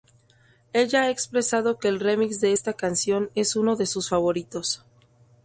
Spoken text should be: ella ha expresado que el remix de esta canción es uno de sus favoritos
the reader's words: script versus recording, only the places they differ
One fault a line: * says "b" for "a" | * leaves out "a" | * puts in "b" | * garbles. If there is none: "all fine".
all fine